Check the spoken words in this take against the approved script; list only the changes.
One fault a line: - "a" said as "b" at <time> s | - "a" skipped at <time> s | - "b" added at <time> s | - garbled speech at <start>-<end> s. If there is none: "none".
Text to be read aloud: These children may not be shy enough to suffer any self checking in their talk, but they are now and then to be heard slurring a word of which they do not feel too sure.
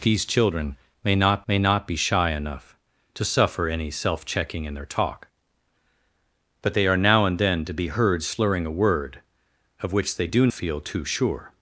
- "may not" added at 1.5 s
- "not" skipped at 10.5 s